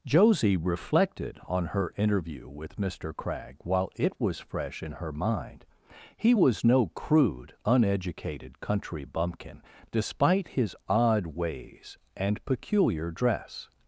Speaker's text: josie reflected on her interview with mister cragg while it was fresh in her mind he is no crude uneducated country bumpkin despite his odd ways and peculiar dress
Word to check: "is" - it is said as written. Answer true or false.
false